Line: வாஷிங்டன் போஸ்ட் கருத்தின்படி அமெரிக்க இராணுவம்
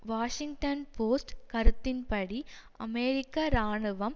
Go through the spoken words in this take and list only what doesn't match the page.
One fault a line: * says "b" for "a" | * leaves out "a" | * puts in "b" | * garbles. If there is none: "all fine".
all fine